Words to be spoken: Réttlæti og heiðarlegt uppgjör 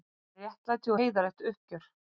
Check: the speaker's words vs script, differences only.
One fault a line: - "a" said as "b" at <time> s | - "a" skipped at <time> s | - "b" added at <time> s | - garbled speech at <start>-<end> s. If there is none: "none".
- "og" skipped at 0.9 s